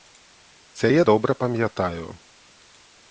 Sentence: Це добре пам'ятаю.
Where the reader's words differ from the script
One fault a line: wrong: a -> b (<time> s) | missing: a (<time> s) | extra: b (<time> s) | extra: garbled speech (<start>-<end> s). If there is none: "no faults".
extra: я (0.9 s)